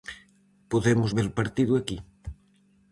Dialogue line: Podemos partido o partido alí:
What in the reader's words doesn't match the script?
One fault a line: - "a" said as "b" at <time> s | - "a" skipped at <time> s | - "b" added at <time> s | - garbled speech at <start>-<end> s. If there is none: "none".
- "partido" said as "ver" at 1.2 s
- "alí" said as "aquí" at 1.8 s